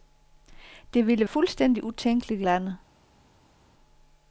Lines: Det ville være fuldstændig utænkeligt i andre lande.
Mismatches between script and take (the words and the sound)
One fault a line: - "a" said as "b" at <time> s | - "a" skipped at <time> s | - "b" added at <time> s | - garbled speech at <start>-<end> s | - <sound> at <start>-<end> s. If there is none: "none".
- "være" skipped at 1.3 s
- "andre" skipped at 2.4 s